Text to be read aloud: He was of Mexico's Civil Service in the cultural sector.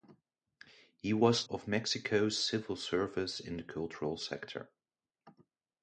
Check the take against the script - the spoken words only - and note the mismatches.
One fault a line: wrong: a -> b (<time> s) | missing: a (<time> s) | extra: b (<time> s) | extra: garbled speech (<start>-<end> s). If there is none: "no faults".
no faults